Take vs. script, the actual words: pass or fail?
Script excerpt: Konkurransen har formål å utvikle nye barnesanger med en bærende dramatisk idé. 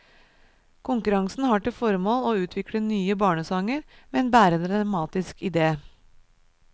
fail